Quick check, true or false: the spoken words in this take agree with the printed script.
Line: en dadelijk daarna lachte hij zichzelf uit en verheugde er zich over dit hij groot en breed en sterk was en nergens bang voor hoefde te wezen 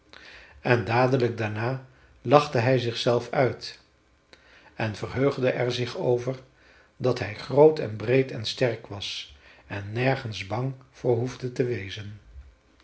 false